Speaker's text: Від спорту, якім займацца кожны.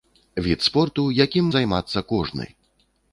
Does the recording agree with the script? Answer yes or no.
yes